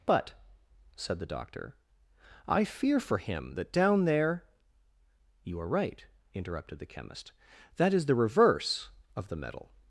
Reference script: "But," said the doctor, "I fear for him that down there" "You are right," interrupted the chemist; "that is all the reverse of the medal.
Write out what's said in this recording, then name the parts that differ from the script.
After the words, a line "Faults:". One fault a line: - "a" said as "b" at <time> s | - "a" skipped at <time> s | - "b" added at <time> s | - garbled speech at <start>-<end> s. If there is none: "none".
"But," said the doctor, "I fear for him that down there" "You are right," interrupted the chemist; "that is the reverse of the medal.
Faults:
- "all" skipped at 8.1 s